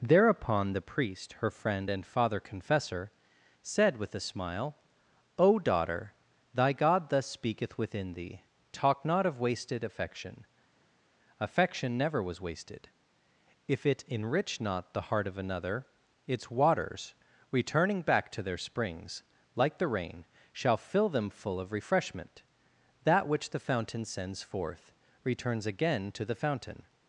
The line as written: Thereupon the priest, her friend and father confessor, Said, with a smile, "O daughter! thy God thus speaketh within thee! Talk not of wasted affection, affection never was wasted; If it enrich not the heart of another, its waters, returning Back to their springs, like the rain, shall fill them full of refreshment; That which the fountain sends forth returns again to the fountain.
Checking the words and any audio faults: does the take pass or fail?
pass